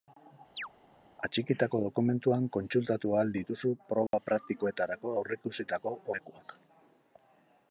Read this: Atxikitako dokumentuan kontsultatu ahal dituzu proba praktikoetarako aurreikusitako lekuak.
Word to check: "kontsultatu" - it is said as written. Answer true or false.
true